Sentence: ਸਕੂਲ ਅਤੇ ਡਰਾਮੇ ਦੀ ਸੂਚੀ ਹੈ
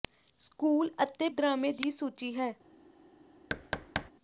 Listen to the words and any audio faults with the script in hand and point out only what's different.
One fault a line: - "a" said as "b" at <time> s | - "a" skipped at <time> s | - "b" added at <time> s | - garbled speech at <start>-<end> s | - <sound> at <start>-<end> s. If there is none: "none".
- thud at 3.5-4.1 s